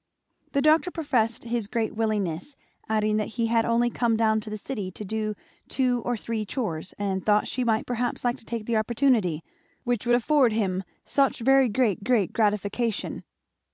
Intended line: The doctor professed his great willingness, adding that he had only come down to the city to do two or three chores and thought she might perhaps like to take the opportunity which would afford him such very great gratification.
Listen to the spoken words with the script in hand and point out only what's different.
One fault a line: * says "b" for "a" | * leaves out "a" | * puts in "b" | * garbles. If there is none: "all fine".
* puts in "great"